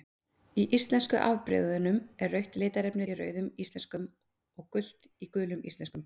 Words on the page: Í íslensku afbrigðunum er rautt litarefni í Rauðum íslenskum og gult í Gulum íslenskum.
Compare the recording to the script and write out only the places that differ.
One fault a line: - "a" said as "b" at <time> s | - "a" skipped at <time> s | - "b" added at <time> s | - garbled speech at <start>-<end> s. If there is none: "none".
none